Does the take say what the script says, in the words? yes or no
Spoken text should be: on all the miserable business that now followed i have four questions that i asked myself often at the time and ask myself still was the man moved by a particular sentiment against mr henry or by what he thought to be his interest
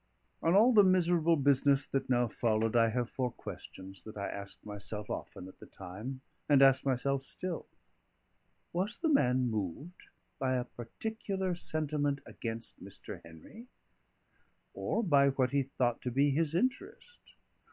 yes